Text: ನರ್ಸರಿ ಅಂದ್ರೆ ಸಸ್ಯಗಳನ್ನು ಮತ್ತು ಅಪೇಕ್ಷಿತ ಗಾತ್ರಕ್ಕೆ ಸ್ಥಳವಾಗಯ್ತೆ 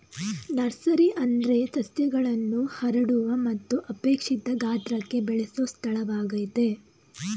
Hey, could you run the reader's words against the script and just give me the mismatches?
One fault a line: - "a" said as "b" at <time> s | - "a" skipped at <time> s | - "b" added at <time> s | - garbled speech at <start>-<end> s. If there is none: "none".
- "ಹರಡುವ" added at 2.8 s
- "ಬೆಳೆಸೊ" added at 5.2 s